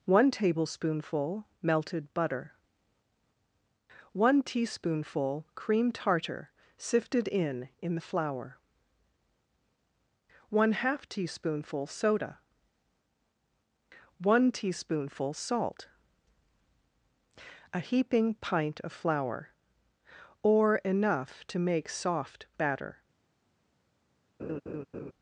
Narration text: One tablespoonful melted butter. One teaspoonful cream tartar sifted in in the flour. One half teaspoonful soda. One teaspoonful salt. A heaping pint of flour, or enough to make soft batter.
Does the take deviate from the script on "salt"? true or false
false